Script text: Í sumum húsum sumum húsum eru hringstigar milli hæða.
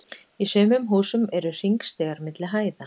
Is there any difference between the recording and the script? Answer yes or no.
yes